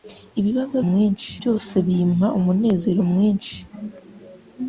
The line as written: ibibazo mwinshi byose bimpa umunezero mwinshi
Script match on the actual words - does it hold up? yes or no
yes